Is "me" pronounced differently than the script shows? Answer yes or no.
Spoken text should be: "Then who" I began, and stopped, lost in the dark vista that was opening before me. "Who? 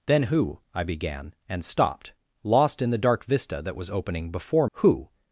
yes